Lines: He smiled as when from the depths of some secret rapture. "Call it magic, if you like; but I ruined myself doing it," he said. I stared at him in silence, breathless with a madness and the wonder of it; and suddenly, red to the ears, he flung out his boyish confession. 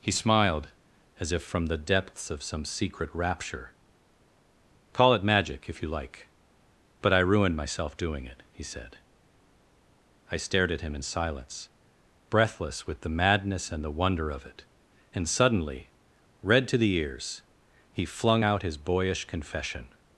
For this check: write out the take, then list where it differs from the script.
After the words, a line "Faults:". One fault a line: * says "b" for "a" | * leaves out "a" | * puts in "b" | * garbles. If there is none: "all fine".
He smiled as if from the depths of some secret rapture. "Call it magic, if you like; but I ruined myself doing it," he said. I stared at him in silence, breathless with the madness and the wonder of it; and suddenly, red to the ears, he flung out his boyish confession.
Faults:
* says "if" for "when"
* says "the" for "a"